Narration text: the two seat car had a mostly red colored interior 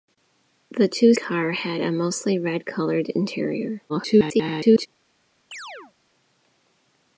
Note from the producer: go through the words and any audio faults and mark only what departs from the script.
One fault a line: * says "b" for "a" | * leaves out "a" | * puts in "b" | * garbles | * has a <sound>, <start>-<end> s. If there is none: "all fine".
* leaves out "seat"
* garbles
* has a chirp, 5.5-5.9 s